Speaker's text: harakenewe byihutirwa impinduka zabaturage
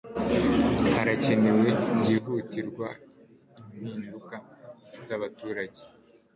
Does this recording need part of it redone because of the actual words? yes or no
no